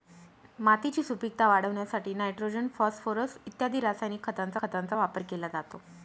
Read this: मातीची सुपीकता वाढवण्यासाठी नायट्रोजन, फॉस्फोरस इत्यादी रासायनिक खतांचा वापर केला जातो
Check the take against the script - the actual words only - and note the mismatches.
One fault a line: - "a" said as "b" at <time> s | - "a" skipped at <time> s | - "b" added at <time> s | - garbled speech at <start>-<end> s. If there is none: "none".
- "खतांचा" added at 4.6 s